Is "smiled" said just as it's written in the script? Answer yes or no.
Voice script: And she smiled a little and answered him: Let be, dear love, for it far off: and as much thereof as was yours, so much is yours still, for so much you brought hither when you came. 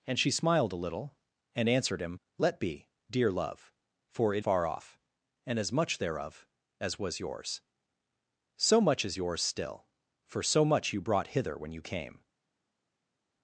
yes